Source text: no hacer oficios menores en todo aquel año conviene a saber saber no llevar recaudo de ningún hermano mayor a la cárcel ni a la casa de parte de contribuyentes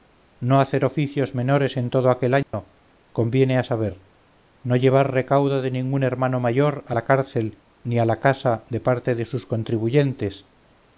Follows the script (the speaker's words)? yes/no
no